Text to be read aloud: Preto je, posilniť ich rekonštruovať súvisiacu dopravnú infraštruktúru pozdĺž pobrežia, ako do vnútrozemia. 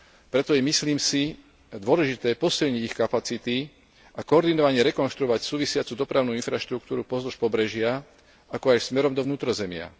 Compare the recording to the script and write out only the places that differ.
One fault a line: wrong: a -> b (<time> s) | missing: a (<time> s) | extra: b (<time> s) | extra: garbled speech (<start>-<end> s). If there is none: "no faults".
extra: myslím si dôležité (0.6 s)
extra: kapacity a koordinovane (3.0 s)
extra: aj smerom (8.8 s)